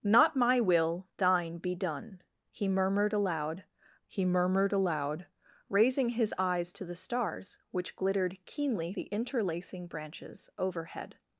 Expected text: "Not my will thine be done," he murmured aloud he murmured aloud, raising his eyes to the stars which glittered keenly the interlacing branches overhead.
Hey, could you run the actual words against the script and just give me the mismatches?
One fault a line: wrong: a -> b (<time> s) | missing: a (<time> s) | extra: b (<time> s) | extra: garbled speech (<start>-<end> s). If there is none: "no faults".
no faults